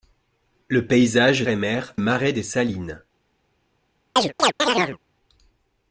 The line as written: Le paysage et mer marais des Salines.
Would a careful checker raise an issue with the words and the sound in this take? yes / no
yes